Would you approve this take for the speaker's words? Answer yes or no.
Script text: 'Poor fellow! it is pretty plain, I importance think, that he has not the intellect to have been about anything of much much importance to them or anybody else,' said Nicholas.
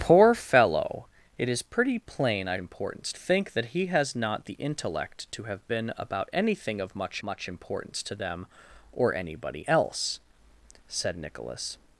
yes